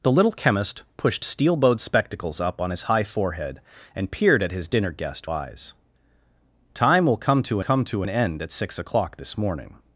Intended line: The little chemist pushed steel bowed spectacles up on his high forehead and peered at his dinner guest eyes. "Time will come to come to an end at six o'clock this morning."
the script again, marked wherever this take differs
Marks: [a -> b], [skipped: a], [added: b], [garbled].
The little chemist pushed steel bowed spectacles up on his high forehead and peered at his dinner guest eyes. "Time will come to come to an end at six o'clock this morning."